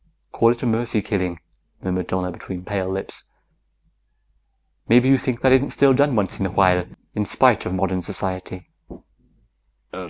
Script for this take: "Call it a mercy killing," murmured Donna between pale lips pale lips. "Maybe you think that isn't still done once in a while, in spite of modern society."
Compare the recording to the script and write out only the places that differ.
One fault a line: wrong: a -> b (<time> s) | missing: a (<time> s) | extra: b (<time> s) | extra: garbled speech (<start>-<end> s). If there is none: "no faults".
missing: pale lips (3.2 s)